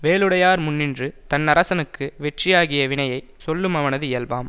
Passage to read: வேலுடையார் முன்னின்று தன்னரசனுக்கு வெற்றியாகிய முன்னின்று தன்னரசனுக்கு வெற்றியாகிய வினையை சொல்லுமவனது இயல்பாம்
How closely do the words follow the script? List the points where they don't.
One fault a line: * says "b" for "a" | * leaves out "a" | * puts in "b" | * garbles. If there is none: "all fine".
* leaves out "முன்னின்று தன்னரசனுக்கு வெற்றியாகிய"